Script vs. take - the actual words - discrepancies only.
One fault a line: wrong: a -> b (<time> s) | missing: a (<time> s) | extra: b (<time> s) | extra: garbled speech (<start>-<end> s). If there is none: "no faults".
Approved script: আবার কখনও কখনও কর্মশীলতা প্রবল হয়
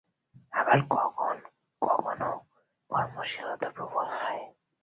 no faults